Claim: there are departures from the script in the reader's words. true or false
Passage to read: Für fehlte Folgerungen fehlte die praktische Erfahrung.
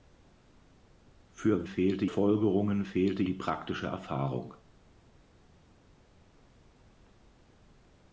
false